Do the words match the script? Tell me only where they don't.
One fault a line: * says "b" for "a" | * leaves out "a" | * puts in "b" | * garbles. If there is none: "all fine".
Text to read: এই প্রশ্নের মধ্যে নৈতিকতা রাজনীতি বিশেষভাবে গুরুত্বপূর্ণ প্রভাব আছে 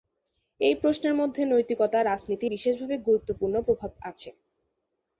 all fine